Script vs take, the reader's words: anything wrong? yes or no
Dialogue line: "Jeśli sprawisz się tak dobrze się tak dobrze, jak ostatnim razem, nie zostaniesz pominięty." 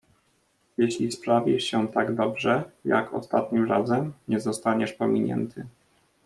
yes